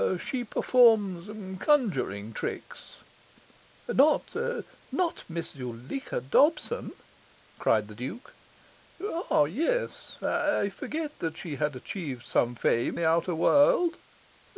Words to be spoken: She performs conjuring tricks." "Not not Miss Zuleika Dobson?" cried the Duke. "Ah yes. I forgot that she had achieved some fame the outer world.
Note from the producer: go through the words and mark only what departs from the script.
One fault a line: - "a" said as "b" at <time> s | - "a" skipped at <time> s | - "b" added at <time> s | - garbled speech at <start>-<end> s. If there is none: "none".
none